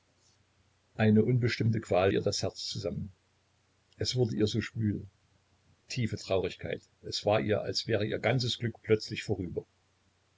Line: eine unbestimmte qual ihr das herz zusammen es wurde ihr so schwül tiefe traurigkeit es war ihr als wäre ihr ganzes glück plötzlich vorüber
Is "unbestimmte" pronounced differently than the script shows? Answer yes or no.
no